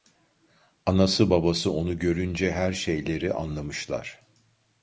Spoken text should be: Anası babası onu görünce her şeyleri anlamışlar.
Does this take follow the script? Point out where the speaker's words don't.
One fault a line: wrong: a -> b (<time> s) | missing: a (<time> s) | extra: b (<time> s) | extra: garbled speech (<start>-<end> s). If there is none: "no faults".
no faults